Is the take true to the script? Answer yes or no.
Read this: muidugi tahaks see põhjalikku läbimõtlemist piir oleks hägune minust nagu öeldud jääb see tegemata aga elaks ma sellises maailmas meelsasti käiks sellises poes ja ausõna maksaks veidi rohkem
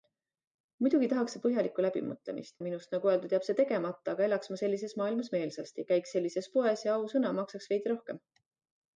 no